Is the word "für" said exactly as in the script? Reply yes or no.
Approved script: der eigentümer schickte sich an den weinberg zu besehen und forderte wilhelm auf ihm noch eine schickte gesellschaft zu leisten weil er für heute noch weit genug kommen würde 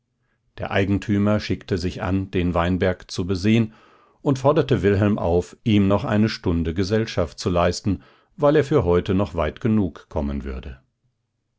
yes